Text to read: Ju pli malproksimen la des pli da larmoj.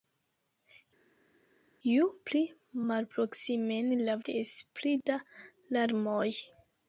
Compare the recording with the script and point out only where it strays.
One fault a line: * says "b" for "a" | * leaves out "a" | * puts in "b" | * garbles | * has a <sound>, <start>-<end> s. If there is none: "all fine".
all fine